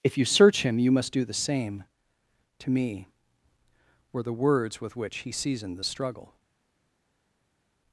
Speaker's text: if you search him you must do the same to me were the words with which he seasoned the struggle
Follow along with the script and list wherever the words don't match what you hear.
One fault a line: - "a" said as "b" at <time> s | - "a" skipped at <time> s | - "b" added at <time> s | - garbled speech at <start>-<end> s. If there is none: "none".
none